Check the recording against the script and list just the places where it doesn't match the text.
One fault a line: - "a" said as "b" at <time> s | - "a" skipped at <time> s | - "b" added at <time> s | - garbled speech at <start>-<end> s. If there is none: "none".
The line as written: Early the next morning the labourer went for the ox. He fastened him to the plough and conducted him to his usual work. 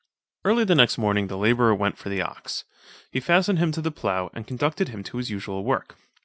none